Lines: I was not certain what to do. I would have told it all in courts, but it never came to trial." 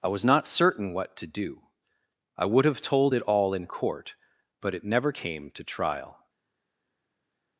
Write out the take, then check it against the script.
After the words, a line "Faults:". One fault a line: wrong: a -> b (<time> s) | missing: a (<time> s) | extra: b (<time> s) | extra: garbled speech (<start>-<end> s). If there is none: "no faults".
I was not certain what to do. I would have told it all in court, but it never came to trial."
Faults:
wrong: courts -> court (3.7 s)